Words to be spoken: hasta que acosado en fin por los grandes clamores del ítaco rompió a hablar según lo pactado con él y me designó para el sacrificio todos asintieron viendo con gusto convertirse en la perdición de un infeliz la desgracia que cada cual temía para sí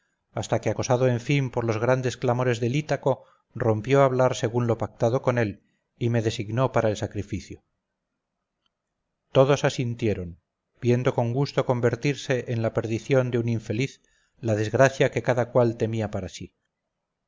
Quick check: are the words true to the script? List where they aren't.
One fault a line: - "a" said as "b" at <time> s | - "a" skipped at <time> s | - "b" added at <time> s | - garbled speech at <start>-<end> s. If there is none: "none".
none